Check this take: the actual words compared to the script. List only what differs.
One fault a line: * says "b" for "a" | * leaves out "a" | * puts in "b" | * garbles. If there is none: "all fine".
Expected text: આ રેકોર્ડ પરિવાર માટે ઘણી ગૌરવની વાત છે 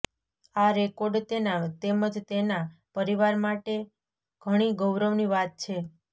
* puts in "તેના તેમજ તેના"